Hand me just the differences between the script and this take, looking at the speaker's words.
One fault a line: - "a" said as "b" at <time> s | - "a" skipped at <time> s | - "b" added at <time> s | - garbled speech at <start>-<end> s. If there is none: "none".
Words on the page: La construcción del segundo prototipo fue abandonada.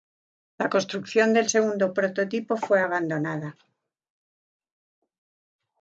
none